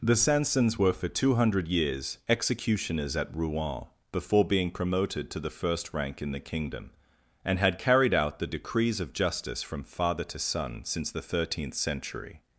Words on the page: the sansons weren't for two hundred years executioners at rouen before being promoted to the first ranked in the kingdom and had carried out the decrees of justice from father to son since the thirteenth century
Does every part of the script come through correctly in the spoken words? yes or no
no